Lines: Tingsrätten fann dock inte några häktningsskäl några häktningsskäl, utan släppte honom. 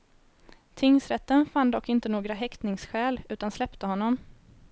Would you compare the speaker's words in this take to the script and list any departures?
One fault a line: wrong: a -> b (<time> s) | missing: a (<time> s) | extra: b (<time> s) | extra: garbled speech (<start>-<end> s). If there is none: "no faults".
missing: några häktningsskäl (3.2 s)